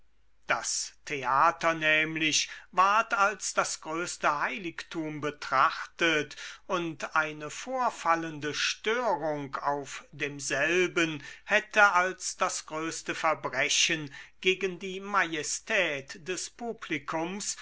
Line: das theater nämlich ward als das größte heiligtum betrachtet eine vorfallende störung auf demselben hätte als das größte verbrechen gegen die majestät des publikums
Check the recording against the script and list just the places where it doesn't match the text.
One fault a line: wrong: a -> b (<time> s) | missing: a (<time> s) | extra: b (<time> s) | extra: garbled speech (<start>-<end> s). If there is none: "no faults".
extra: und (6.7 s)